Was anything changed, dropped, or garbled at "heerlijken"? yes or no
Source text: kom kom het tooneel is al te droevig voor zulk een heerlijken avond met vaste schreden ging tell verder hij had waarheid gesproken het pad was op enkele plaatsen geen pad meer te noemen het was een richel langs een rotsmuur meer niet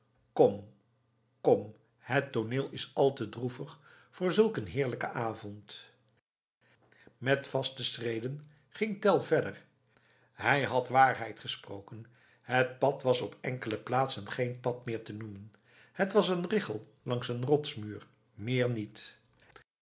no